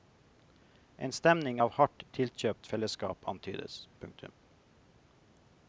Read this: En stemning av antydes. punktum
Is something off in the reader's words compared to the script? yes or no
yes